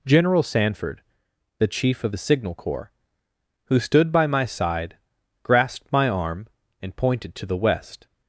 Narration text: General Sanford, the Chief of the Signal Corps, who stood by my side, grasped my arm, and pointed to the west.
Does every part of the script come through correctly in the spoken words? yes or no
yes